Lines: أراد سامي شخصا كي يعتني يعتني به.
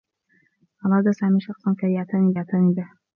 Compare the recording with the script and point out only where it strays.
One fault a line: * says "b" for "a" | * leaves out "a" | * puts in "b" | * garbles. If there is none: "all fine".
all fine